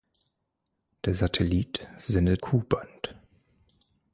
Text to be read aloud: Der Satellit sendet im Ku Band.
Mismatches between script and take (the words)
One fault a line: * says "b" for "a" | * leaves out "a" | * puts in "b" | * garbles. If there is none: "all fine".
* leaves out "im"